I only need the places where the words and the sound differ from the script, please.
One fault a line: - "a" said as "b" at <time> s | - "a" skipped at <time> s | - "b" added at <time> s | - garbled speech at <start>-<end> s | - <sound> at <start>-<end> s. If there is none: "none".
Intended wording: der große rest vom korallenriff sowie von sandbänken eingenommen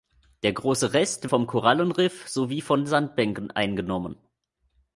none